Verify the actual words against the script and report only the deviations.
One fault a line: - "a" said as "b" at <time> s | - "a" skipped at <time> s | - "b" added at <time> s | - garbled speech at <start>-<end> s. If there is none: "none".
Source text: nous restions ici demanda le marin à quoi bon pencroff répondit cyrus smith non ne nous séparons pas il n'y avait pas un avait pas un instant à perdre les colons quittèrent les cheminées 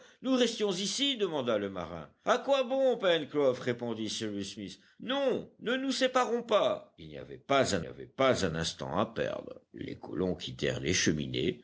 none